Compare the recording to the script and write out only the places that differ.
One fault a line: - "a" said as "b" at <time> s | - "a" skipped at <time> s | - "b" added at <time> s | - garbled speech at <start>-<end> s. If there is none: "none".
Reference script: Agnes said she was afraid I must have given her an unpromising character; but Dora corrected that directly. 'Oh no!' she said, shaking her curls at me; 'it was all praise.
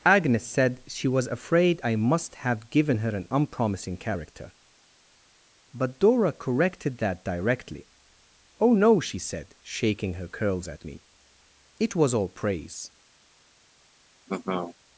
none